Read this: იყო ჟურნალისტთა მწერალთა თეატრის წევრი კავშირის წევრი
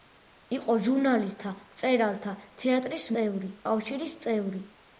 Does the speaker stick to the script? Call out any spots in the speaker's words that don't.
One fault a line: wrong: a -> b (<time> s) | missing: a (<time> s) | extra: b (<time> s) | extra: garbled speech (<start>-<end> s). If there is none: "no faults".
no faults